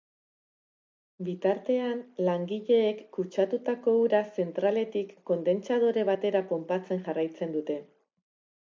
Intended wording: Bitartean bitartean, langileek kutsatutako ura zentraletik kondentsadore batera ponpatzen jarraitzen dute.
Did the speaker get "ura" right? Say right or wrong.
right